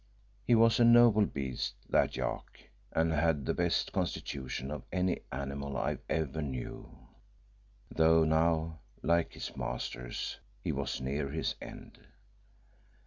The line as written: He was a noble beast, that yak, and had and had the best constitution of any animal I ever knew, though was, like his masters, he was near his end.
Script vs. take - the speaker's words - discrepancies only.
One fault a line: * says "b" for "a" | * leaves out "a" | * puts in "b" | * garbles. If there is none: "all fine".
* leaves out "and had"
* says "now" for "was"